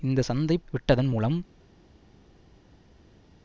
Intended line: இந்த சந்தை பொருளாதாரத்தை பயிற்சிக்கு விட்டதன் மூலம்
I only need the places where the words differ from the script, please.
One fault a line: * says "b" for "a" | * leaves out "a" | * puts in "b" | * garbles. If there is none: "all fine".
* leaves out "பொருளாதாரத்தை பயிற்சிக்கு"